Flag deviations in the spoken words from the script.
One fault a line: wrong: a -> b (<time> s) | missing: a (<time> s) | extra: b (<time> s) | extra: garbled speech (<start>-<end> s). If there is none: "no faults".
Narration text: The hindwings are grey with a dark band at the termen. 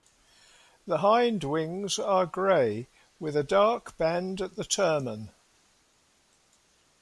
no faults